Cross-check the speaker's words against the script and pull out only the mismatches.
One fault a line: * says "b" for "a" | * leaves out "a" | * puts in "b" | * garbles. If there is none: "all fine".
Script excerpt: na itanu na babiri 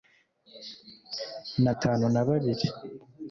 all fine